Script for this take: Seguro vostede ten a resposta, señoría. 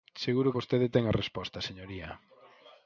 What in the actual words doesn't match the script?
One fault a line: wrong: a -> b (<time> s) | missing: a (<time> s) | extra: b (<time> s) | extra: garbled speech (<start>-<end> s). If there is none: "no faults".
no faults